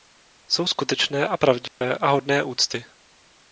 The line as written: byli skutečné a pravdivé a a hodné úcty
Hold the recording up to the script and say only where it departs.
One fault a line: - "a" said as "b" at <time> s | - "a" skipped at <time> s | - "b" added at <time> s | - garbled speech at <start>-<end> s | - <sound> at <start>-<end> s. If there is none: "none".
- "byli" said as "jsou" at 0.5 s
- dropout at 1.7-1.8 s
- "a" skipped at 2.1 s